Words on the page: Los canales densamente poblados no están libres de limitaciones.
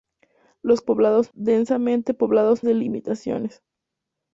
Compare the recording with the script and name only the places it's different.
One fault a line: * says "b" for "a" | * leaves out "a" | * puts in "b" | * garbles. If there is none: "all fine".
* says "poblados" for "canales"
* leaves out "no están libres"